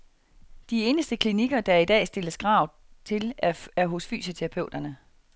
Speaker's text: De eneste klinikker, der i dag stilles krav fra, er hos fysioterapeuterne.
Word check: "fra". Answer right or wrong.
wrong